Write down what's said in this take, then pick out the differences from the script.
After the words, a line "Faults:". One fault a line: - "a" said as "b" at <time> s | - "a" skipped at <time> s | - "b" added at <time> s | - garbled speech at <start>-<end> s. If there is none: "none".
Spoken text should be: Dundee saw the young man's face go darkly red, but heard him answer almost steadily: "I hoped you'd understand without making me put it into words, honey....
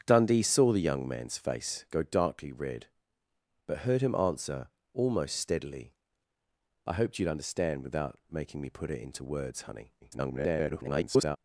Dundee saw the young man's face go darkly red, but heard him answer almost steadily: "I hoped you'd understand without making me put it into words, honey.... [garbled]
Faults:
- garbled speech at 10.0-11.4 s